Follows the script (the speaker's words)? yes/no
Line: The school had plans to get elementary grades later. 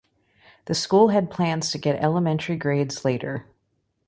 yes